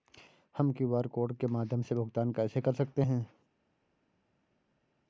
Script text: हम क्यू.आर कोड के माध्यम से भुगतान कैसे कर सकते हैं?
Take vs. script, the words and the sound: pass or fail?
pass